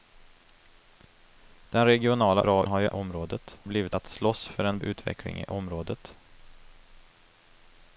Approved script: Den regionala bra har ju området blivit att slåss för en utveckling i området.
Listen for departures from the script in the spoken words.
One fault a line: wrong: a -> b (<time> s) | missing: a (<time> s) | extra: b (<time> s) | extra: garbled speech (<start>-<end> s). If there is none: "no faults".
no faults